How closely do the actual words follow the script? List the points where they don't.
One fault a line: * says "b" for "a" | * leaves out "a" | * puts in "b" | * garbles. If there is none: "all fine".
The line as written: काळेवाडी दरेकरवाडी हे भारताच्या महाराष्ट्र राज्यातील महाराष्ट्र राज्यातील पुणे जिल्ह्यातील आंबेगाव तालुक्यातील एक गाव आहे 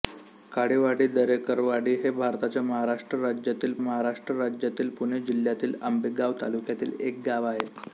all fine